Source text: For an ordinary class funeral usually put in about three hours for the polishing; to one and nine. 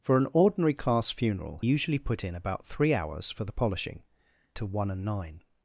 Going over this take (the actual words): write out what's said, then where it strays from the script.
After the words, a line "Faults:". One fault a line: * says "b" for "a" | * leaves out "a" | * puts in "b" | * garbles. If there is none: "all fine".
For an ordinary class funeral usually put in about three hours for the polishing; to one and nine.
Faults:
all fine